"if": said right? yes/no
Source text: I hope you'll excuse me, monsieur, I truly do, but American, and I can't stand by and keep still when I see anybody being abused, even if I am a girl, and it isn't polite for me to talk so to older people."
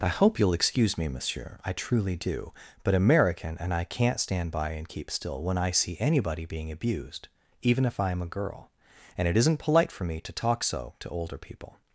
yes